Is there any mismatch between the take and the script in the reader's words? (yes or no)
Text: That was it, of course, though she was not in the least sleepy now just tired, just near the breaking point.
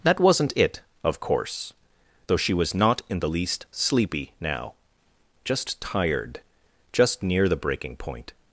yes